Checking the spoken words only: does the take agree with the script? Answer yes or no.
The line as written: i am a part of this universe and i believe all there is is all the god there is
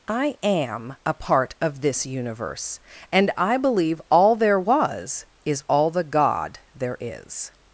no